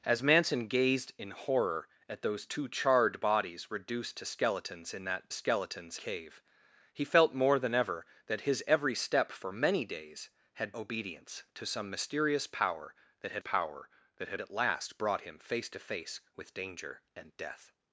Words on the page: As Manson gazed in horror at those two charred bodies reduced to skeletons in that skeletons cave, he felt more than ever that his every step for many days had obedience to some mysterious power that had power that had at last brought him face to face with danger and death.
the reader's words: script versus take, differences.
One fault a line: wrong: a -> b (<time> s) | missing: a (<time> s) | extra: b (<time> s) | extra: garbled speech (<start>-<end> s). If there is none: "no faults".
no faults